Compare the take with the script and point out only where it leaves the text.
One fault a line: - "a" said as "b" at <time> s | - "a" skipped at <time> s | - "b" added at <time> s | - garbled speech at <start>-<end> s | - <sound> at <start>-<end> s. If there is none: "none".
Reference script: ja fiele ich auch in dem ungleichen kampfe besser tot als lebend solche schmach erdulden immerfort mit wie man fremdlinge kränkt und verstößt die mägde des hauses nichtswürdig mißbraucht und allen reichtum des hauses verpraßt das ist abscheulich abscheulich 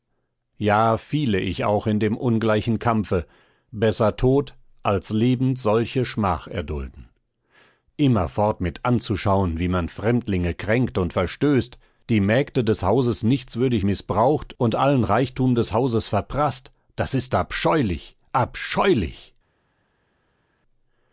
- "anzuschauen" added at 8.8 s